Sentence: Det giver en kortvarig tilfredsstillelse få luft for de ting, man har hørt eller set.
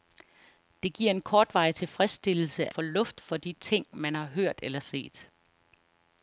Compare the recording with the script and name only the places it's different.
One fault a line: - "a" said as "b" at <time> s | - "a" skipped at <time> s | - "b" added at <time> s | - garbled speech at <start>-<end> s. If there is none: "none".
none